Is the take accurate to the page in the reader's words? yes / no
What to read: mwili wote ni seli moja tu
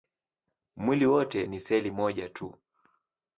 yes